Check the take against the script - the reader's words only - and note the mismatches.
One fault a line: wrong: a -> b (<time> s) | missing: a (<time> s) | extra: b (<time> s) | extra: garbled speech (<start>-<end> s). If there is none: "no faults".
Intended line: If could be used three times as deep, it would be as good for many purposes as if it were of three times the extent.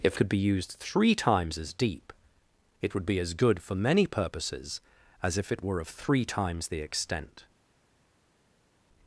no faults